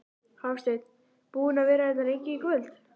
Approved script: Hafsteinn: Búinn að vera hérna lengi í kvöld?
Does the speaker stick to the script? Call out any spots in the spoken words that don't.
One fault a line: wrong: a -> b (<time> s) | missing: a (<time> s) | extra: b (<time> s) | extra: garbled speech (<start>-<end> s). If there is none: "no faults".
no faults